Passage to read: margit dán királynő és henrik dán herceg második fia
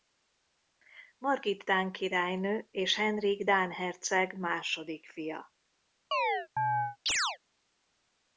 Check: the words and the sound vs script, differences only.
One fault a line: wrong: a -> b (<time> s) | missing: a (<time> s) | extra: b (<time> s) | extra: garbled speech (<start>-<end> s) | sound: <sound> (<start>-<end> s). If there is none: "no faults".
sound: chirp (6.1-7.4 s)